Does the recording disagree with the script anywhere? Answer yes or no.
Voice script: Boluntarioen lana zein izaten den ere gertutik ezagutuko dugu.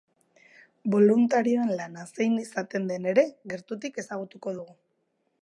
no